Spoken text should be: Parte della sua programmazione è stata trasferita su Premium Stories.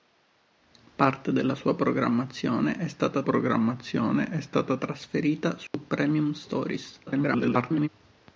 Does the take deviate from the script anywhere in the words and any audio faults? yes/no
yes